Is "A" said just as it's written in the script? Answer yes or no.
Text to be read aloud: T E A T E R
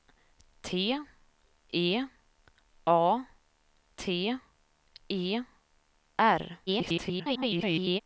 yes